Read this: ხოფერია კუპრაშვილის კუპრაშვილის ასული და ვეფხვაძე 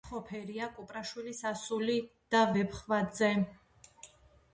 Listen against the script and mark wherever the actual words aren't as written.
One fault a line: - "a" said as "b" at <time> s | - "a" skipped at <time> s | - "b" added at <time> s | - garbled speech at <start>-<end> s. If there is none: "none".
- "კუპრაშვილის" skipped at 1.4 s